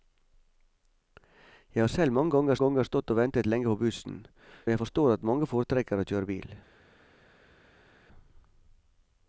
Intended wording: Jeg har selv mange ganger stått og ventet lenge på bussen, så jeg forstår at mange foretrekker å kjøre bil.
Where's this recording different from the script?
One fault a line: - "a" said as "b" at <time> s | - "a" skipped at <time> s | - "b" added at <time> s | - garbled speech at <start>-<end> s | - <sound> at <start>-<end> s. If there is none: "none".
- "ganger" added at 2.6 s
- "så" skipped at 4.2 s